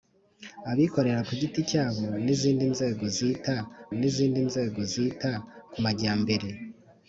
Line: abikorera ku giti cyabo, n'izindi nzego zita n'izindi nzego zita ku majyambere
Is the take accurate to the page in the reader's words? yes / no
yes